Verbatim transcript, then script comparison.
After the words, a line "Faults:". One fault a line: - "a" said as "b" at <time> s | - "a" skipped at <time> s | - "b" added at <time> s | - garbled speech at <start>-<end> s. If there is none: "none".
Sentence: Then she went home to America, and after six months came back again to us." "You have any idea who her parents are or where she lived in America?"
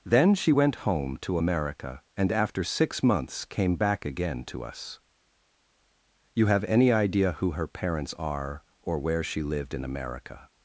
Then she went home to America, and after six months came back again to us." "You have any idea who her parents are or where she lived in America?"
Faults:
none